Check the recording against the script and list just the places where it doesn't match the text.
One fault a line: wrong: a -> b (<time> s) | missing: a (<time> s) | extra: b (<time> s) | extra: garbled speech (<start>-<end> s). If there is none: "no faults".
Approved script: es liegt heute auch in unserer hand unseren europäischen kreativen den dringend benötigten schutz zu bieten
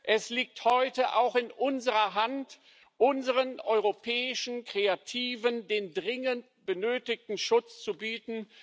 no faults